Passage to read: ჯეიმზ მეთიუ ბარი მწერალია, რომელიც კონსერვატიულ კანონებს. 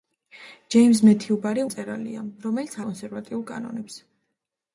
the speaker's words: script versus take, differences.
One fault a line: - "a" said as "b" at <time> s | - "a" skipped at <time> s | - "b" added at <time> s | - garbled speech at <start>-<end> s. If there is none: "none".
none